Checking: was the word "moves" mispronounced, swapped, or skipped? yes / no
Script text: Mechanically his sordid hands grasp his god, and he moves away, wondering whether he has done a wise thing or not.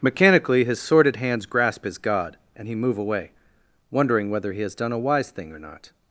yes